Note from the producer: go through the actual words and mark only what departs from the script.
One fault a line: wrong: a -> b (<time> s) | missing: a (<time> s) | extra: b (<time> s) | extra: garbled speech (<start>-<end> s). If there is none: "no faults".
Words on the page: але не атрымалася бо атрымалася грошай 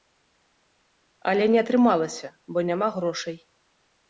wrong: атрымалася -> няма (2.7 s)